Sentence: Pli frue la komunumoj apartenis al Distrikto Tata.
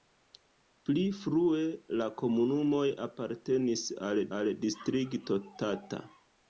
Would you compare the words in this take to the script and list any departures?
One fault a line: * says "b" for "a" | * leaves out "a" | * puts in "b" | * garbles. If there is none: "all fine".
* puts in "al"